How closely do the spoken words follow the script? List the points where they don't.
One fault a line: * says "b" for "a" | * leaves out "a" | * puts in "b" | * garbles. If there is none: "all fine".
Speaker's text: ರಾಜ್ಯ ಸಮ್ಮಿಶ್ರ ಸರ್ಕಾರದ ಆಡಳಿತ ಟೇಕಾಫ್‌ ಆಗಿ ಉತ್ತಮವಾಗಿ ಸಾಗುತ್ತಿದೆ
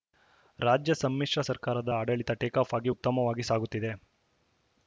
all fine